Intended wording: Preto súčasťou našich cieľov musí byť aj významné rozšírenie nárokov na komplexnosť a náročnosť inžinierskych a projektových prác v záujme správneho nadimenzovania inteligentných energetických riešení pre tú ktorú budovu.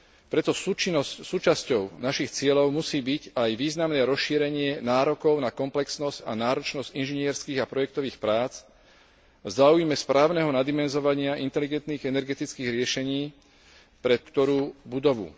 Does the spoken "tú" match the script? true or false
false